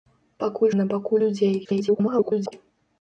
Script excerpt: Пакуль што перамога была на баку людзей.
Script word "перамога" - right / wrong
wrong